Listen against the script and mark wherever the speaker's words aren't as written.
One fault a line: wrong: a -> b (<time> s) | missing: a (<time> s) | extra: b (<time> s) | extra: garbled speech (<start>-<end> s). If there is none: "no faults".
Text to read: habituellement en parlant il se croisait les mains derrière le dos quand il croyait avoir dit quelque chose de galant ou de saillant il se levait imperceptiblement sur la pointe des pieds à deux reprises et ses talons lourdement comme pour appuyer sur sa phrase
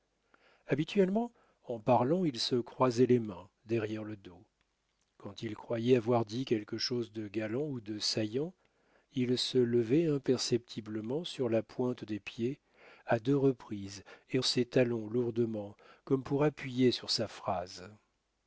no faults